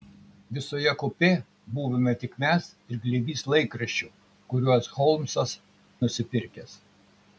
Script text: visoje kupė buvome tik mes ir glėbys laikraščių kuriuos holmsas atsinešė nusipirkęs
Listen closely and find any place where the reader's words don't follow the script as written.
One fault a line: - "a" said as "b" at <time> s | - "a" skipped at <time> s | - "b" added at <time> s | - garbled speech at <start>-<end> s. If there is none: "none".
- "atsinešė" skipped at 5.6 s